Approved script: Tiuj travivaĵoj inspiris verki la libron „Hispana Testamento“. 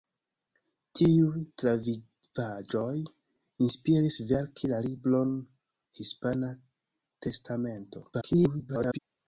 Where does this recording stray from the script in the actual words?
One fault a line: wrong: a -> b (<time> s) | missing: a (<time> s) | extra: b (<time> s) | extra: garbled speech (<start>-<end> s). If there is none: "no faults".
extra: garbled speech (8.1-9.0 s)